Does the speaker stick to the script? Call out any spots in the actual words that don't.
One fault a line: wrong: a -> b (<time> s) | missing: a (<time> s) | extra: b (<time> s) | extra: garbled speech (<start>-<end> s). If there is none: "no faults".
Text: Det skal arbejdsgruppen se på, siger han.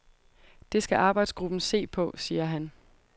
no faults